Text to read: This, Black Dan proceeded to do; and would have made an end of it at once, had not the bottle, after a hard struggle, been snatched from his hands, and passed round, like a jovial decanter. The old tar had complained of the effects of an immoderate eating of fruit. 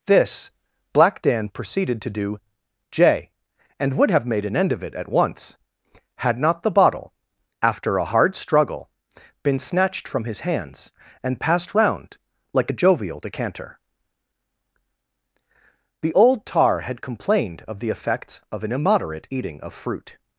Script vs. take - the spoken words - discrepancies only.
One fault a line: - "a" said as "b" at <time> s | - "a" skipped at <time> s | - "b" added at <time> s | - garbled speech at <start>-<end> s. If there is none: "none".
- "j" added at 2.9 s